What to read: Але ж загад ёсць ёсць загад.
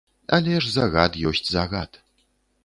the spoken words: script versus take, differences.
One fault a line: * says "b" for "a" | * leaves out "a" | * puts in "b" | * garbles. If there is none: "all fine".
* leaves out "ёсць"